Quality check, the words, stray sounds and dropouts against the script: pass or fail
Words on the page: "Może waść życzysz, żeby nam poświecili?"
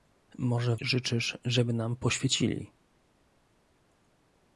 fail